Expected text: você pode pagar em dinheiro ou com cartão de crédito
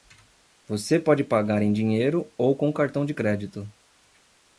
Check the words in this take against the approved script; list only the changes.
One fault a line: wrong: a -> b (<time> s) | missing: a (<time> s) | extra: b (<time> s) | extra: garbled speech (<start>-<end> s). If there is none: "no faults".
no faults